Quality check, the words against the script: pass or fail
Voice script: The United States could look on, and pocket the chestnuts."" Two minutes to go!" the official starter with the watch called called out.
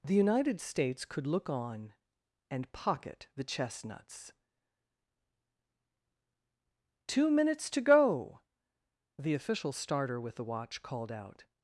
fail